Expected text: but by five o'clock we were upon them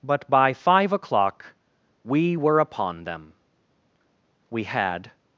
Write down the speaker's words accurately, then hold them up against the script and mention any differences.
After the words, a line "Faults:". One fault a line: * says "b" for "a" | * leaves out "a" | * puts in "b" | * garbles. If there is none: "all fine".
but by five o'clock we were upon them we had
Faults:
* puts in "we had"